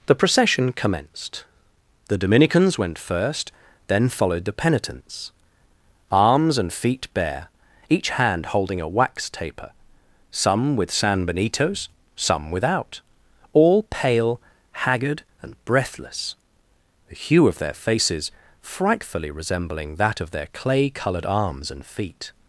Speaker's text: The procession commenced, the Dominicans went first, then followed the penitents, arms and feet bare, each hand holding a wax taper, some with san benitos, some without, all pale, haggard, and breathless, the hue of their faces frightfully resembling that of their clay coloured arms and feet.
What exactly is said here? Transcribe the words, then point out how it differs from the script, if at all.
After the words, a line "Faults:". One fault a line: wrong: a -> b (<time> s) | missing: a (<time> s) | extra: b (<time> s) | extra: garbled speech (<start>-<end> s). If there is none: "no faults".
The procession commenced, the Dominicans went first, then followed the penitents, arms and feet bare, each hand holding a wax taper, some with san benitos, some without, all pale, haggard, and breathless, the hue of their faces frightfully resembling that of their clay coloured arms and feet.
Faults:
no faults